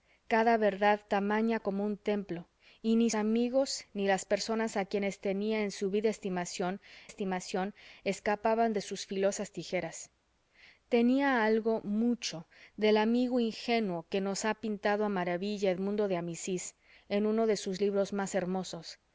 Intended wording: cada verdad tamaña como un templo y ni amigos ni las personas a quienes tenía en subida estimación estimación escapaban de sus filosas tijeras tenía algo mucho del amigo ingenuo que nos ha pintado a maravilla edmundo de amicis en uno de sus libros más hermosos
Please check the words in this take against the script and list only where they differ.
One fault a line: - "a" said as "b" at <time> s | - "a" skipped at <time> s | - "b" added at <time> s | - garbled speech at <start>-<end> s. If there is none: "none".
none